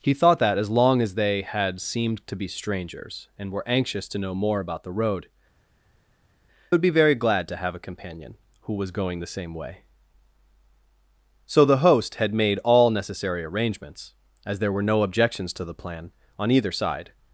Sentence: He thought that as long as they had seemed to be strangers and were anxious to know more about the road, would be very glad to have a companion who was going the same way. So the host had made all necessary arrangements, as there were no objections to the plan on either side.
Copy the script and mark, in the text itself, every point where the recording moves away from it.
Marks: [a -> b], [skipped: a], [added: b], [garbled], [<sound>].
He thought that as long as they had seemed to be strangers and were anxious to know more about the road, would be very glad to have a companion who was going the same way. So the host had made all necessary arrangements, as there were no objections to the plan on either side.